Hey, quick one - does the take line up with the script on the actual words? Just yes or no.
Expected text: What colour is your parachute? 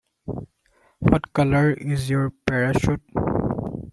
yes